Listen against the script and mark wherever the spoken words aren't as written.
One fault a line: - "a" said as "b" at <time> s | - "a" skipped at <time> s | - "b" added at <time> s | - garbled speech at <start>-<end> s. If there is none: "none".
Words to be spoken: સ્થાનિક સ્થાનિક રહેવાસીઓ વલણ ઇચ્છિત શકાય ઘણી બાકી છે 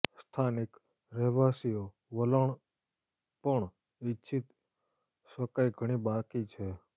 - "સ્થાનિક" skipped at 0.8 s
- "પણ" added at 3.4 s